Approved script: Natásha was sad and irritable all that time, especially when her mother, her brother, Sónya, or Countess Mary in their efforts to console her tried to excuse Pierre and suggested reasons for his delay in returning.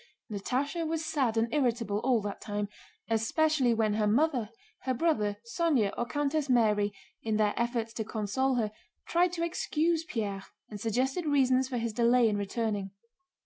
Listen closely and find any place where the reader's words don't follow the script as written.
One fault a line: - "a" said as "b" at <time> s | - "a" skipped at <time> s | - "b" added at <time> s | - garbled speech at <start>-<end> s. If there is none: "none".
none